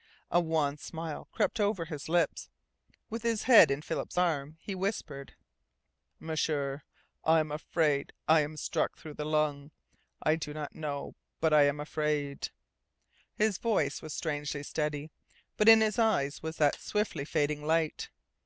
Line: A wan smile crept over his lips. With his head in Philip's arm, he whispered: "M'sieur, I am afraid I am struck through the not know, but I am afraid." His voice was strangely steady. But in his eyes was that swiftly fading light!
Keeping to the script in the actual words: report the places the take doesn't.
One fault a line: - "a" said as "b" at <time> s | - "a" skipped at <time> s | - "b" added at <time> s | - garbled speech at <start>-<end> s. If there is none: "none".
- "lung I do" added at 9.2 s